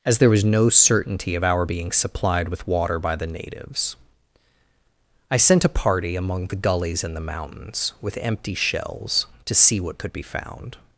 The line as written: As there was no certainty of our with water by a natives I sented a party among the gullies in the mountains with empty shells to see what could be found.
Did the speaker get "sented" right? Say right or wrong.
wrong